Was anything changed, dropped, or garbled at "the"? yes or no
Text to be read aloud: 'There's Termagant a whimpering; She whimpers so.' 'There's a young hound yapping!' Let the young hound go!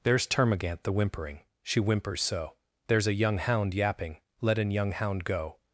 yes